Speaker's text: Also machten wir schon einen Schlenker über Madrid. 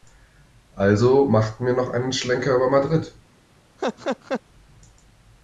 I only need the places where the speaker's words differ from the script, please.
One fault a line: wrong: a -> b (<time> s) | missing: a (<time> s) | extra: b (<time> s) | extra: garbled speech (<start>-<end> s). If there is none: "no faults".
wrong: schon -> noch (1.7 s)